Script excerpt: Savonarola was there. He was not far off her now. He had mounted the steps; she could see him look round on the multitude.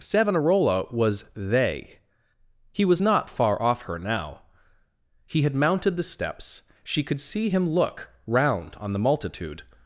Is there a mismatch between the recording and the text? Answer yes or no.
yes